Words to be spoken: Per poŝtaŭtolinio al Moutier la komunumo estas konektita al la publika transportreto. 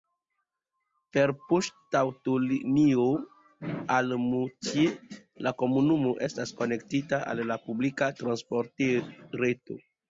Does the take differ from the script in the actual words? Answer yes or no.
no